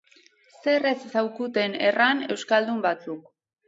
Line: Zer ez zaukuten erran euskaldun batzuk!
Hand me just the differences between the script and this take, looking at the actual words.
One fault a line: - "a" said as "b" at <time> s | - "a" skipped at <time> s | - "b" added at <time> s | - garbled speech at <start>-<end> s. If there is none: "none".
none